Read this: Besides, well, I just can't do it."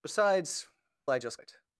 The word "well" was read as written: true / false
false